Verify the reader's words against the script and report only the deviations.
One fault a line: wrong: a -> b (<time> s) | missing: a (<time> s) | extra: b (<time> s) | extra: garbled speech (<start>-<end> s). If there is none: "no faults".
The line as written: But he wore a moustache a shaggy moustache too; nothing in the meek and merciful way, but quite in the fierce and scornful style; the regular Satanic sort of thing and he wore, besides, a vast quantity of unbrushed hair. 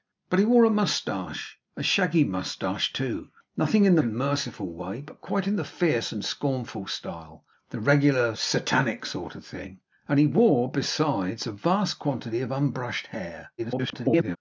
missing: meek (4.0 s)
extra: garbled speech (13.6-14.4 s)